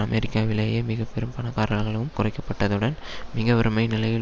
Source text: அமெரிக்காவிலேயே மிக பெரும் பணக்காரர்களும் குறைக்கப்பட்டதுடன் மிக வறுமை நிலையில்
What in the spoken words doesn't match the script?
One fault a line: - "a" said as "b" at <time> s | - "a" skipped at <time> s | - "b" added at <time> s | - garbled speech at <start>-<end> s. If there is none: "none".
none